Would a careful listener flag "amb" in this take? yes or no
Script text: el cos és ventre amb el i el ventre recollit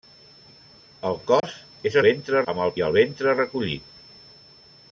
no